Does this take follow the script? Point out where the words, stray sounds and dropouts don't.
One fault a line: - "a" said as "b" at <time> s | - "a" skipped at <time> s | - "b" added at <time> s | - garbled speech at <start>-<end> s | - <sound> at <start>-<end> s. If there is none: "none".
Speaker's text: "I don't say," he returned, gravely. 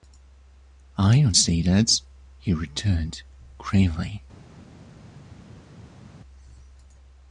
- "that" added at 1.6 s